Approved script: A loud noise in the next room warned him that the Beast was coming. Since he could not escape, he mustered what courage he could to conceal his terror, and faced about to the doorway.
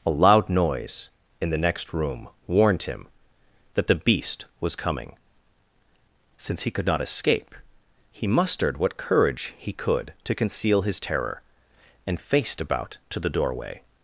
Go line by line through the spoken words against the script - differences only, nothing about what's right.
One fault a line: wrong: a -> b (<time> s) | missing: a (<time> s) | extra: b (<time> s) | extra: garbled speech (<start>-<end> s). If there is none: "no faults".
no faults